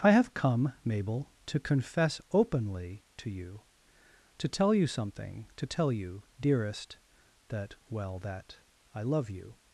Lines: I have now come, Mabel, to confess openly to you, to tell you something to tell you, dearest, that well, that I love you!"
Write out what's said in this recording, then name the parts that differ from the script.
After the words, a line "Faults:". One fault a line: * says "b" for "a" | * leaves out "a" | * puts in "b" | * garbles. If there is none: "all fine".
I have come, Mabel, to confess openly to you, to tell you something to tell you, dearest, that well, that I love you!"
Faults:
* leaves out "now"